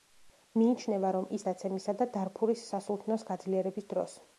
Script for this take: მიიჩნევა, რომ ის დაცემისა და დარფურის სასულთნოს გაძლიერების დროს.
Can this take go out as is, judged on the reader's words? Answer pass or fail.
pass